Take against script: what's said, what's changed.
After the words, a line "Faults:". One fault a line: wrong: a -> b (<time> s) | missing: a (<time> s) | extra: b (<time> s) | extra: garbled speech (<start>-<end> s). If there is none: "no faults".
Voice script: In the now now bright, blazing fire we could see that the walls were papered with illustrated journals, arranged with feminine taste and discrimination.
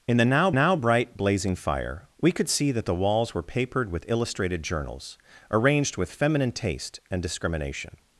In the now now bright, blazing fire we could see that the walls were papered with illustrated journals, arranged with feminine taste and discrimination.
Faults:
no faults